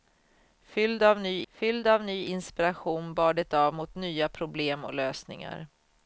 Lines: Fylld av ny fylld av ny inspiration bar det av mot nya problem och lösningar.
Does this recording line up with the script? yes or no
yes